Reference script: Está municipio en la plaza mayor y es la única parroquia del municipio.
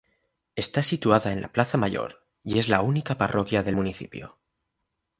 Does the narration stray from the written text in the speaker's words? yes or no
yes